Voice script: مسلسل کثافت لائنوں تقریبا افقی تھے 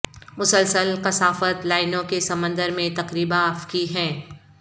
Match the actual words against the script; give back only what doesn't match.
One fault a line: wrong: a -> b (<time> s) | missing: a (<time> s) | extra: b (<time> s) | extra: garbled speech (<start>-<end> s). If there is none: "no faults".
extra: کے سمندر میں (2.0 s)
wrong: تھے -> ہیں (4.0 s)